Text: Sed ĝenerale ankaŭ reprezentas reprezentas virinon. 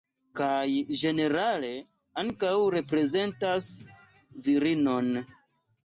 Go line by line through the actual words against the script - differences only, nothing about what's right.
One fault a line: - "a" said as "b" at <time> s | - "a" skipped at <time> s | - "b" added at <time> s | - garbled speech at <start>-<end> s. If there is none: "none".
- "Sed" said as "Kaj" at 0.4 s
- "reprezentas" skipped at 3.7 s